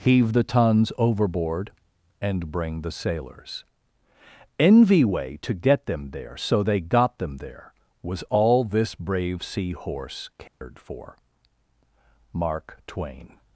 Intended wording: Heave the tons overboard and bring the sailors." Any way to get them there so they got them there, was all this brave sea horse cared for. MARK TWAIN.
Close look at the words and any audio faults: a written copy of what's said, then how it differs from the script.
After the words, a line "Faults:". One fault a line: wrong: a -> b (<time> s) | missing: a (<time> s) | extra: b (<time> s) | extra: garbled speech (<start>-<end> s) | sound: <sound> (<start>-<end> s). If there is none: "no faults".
Heave the tons overboard and bring the sailors." Envy way to get them there so they got them there, was all this brave sea horse cared for. MARK TWAIN.
Faults:
wrong: Any -> Envy (4.6 s)
sound: dropout (10.5-10.6 s)